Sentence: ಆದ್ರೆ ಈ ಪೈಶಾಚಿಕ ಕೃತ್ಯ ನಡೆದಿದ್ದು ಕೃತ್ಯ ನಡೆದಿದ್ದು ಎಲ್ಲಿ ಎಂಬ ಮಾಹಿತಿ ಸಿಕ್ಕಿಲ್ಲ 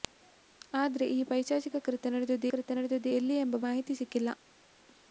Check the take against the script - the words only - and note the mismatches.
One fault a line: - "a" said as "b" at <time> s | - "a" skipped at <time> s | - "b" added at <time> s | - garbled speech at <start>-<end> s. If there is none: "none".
none